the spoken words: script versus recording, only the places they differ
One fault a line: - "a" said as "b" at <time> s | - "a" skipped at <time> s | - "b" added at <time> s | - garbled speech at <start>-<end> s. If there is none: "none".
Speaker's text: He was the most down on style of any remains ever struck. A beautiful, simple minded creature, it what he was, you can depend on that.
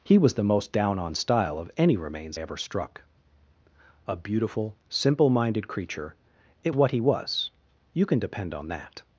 none